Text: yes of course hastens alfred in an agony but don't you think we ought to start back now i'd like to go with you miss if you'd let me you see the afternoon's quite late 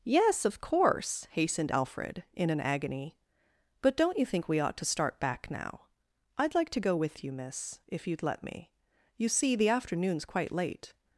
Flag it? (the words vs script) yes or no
yes